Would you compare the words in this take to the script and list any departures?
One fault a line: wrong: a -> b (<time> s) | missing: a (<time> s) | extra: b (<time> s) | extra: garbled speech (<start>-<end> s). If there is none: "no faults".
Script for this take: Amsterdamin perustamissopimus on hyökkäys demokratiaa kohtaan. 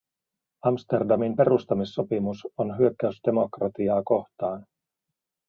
no faults